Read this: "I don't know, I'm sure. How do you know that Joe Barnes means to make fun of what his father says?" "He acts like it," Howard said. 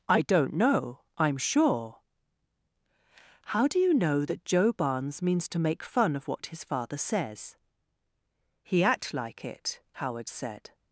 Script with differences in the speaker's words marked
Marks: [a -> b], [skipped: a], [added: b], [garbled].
"I don't know, I'm sure. How do you know that Joe Barnes means to make fun of what his father says?" "He [acts -> act] like it," Howard said.